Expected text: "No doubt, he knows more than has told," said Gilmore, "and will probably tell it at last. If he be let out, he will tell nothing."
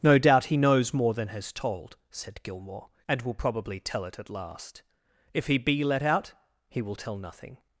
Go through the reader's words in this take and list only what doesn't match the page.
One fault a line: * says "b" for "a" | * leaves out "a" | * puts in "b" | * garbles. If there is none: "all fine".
all fine